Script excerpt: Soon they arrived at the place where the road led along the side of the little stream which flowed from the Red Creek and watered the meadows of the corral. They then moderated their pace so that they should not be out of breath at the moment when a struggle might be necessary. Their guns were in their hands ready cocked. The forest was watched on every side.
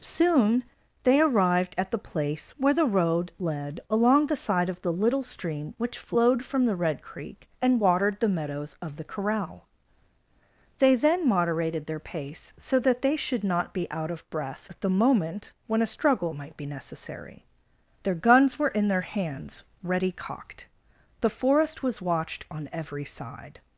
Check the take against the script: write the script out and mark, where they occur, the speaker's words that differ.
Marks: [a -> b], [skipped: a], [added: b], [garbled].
Soon they arrived at the place where the road led along the side of the little stream which flowed from the Red Creek and watered the meadows of the corral. They then moderated their pace so that they should not be out of breath at the moment when a struggle might be necessary. Their guns were in their hands ready cocked. The forest was watched on every side.